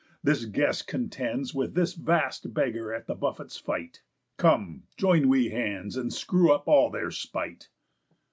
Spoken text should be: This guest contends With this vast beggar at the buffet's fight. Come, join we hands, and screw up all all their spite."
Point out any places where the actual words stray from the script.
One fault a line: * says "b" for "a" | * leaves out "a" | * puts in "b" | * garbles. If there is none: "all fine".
* leaves out "all"